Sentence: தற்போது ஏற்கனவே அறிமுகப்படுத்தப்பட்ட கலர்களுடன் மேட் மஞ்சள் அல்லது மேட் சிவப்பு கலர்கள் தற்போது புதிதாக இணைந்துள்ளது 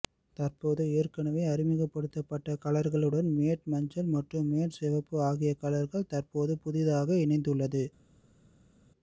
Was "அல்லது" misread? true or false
true